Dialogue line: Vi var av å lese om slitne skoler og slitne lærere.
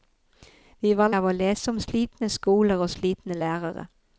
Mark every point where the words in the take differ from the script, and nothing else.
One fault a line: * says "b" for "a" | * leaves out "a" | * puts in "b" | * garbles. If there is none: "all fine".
all fine